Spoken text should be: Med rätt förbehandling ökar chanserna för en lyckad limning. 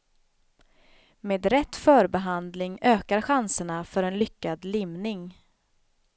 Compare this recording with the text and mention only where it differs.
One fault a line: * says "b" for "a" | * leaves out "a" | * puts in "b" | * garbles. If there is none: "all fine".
all fine